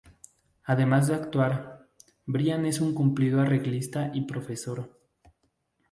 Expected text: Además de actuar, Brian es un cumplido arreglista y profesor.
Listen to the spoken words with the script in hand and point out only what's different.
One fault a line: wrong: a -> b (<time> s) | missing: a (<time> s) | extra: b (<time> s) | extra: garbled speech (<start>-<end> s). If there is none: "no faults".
no faults